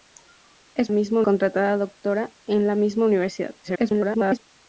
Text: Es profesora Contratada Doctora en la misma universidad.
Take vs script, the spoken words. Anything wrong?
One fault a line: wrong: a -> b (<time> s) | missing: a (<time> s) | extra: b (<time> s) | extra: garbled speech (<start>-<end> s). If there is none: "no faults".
wrong: profesora -> misma (0.9 s)
extra: garbled speech (3.6-4.4 s)